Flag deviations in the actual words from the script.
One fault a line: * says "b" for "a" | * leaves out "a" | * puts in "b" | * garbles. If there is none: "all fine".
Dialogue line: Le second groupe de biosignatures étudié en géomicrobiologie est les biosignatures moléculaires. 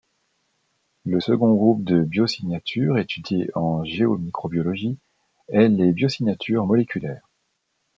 all fine